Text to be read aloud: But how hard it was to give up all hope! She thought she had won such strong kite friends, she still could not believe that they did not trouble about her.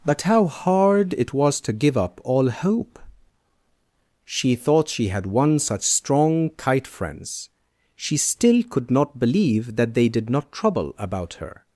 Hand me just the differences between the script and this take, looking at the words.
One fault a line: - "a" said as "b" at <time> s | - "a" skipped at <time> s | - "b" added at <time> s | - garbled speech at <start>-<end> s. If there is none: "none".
none